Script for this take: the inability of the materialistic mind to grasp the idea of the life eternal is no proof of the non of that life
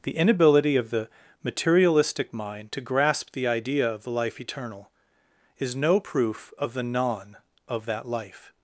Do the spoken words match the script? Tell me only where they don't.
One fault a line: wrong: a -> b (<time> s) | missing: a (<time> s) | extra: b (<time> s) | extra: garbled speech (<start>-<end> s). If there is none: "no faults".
no faults